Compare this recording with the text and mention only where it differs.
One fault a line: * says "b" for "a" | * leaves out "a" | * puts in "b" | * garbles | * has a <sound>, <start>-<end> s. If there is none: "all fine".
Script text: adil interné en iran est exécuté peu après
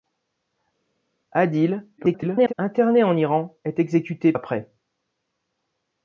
* garbles
* leaves out "peu"